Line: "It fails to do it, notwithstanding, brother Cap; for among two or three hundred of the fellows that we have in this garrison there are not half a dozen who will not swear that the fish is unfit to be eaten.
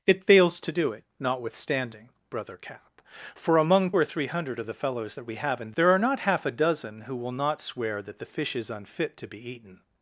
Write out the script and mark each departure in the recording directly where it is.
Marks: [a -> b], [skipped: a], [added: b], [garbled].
"It fails to do it, notwithstanding, brother Cap; for among [skipped: two] or three hundred of the fellows that we have in [skipped: this garrison] there are not half a dozen who will not swear that the fish is unfit to be eaten.